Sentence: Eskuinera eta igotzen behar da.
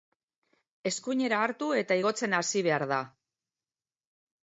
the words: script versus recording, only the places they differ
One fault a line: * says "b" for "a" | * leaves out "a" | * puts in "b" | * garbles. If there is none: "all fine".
* puts in "hartu"
* puts in "hasi"